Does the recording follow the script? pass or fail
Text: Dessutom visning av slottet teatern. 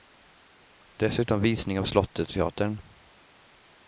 pass